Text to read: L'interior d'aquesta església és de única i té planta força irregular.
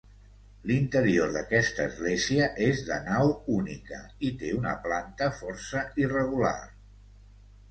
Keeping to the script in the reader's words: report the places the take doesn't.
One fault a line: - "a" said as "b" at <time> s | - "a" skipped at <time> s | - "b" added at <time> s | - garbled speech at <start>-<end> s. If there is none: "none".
- "nau" added at 3.1 s
- "una" added at 4.6 s